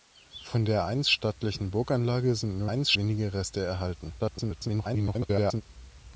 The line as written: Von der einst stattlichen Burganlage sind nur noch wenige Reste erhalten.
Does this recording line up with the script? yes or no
no